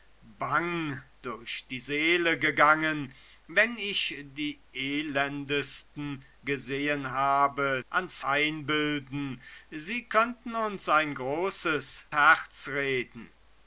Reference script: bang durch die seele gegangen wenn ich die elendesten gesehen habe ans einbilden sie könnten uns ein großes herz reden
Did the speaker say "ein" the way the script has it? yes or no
yes